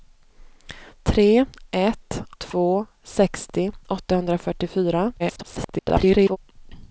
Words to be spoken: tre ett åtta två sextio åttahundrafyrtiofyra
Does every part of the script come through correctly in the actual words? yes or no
no